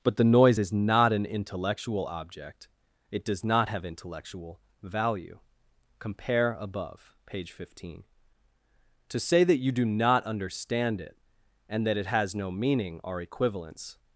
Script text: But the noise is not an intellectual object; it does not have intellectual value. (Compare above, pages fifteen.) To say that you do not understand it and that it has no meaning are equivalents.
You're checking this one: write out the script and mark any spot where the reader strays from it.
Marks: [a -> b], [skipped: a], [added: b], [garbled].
But the noise is not an intellectual object; it does not have intellectual value. (Compare above, [pages -> page] fifteen.) To say that you do not understand it and that it has no meaning are equivalents.